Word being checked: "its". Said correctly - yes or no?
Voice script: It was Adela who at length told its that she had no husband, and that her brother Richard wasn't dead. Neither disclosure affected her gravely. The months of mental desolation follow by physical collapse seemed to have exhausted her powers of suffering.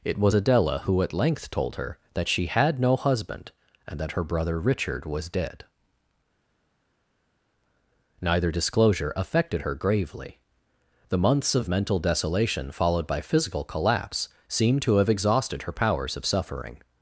no